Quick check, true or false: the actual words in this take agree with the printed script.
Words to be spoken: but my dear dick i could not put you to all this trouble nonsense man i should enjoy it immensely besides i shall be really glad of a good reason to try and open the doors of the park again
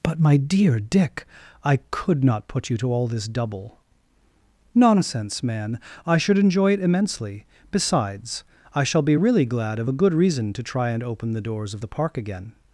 false